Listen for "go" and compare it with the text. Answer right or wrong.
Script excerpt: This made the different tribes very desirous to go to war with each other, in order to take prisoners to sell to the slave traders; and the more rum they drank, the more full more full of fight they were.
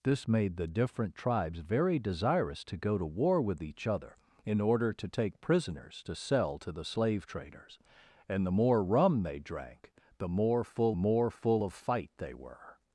right